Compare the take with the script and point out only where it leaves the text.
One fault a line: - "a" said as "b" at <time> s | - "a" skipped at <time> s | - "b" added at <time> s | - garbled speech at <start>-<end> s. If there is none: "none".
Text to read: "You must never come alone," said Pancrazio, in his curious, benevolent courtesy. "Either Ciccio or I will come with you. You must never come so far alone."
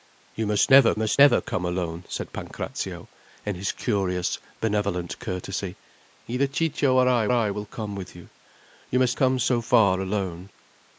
- "must never" added at 1.0 s
- "I" added at 7.3 s
- "never" skipped at 9.2 s